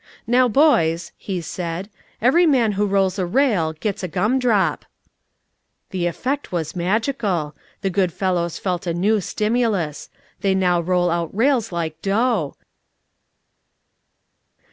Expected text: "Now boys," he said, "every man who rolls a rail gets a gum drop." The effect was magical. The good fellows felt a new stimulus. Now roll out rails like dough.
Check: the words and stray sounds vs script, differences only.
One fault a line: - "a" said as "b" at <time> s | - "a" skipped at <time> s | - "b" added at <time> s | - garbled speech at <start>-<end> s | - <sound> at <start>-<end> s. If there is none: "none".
- "They" added at 10.4 s